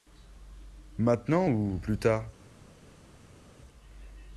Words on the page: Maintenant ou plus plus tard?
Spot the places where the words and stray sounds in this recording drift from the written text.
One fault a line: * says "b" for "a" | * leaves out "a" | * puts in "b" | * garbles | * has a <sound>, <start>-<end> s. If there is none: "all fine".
* leaves out "plus"